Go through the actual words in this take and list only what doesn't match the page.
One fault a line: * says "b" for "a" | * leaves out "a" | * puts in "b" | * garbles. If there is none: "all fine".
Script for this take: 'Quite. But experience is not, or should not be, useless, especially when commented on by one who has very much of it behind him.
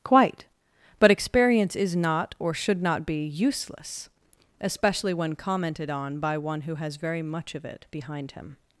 all fine